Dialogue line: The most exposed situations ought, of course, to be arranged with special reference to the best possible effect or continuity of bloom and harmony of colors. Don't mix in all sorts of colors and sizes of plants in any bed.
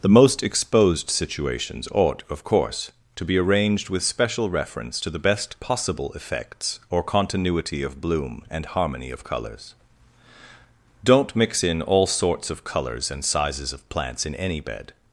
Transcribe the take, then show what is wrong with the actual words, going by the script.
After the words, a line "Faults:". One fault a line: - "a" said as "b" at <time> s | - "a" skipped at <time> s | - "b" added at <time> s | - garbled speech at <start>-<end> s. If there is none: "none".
The most exposed situations ought, of course, to be arranged with special reference to the best possible effects or continuity of bloom and harmony of colors. Don't mix in all sorts of colors and sizes of plants in any bed.
Faults:
- "effect" said as "effects" at 6.2 s